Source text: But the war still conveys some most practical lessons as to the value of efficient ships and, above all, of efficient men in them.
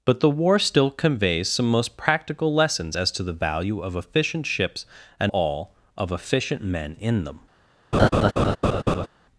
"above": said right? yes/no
no